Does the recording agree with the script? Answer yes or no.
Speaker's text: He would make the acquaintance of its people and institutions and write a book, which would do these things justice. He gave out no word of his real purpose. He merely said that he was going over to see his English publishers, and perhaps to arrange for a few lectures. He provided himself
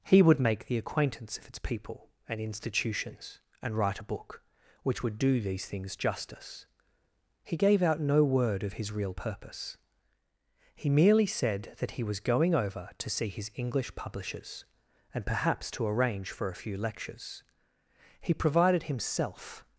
yes